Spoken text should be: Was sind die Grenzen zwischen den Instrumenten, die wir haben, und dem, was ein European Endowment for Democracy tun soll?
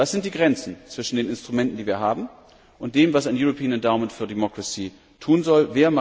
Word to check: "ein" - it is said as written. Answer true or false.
true